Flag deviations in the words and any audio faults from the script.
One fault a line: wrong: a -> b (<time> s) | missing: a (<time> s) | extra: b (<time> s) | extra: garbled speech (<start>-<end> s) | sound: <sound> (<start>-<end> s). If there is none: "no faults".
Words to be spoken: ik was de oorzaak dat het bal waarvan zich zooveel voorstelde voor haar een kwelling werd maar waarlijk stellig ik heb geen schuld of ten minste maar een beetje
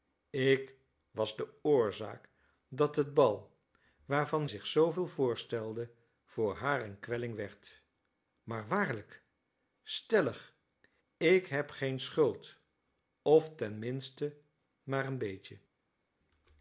no faults